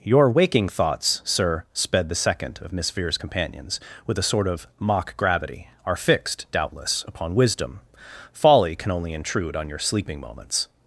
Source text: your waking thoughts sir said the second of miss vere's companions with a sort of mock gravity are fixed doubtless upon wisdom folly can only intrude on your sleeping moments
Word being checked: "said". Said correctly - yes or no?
no